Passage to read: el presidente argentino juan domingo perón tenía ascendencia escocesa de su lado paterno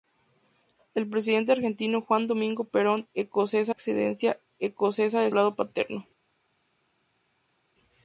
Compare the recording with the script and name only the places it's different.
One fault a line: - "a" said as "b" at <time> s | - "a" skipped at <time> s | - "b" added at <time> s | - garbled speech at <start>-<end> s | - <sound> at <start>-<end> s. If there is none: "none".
- "tenía" said as "escocesa" at 3.1 s
- "su" skipped at 5.3 s